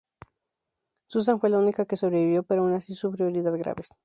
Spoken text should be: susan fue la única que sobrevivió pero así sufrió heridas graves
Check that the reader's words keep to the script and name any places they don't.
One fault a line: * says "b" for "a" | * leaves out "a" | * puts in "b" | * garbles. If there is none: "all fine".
* puts in "aun"